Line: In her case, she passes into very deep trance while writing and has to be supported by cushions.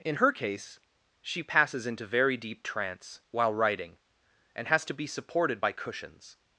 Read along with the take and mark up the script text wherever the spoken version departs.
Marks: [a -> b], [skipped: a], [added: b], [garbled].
In her case, she passes into very deep trance while writing and has to be supported by cushions.